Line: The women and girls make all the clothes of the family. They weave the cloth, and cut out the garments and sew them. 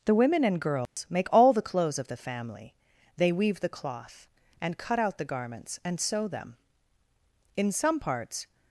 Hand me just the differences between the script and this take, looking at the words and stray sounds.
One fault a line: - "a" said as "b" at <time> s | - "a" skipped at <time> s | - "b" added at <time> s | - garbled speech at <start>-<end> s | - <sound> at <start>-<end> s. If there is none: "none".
- dropout at 0.9-1.0 s
- "In some parts" added at 7.5 s